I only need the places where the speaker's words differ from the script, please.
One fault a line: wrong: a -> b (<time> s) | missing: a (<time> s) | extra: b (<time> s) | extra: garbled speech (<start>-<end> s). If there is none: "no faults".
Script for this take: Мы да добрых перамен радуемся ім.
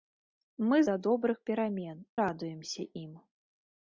no faults